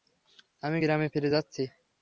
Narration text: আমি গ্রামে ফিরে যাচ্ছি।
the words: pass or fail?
pass